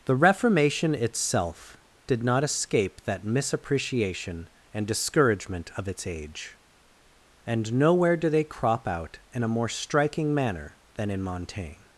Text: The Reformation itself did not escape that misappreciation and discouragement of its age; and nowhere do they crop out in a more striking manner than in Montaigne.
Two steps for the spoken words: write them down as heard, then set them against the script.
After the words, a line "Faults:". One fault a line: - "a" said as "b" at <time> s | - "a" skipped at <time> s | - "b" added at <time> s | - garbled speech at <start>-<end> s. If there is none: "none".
The Reformation itself did not escape that misappreciation and discouragement of its age; and nowhere do they crop out in a more striking manner than in Montaigne.
Faults:
none